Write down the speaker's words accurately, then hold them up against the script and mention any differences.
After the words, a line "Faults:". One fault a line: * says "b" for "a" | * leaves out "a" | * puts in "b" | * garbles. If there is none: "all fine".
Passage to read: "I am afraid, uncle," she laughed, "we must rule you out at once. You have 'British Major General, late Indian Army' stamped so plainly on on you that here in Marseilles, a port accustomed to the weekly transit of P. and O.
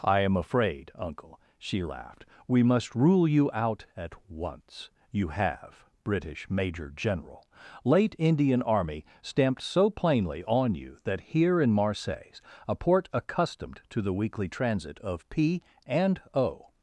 "I am afraid, uncle," she laughed, "we must rule you out at once. You have 'British Major General, late Indian Army' stamped so plainly on you that here in Marseilles, a port accustomed to the weekly transit of P. and O.
Faults:
* leaves out "on"